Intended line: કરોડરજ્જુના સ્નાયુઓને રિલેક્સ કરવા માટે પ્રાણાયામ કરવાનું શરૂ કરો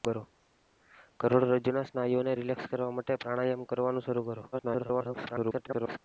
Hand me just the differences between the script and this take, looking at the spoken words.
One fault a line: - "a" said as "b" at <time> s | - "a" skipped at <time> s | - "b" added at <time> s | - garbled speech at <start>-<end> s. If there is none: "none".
- garbled speech at 4.5-6.0 s